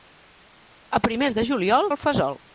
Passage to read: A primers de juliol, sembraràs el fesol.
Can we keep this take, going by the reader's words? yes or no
no